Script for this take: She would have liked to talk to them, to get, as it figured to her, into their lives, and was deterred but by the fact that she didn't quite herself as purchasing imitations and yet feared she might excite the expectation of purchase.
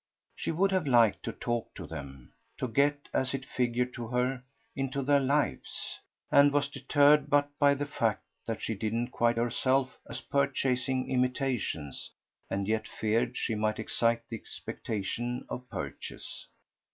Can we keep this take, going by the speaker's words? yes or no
yes